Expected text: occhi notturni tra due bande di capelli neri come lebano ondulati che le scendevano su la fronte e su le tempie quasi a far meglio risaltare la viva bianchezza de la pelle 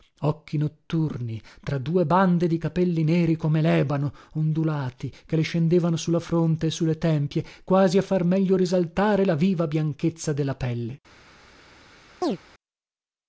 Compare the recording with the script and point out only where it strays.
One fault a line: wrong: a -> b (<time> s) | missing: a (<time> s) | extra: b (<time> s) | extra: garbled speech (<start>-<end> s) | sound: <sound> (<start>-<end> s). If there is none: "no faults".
sound: chirp (12.2-12.4 s)